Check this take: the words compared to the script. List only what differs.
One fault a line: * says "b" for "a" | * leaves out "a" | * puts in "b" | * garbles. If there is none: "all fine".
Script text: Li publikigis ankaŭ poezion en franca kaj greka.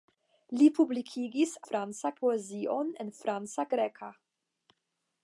* says "franca" for "ankaŭ"
* leaves out "kaj"